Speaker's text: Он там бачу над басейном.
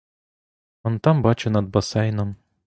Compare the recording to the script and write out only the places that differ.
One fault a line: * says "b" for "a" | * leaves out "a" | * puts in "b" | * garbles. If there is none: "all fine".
all fine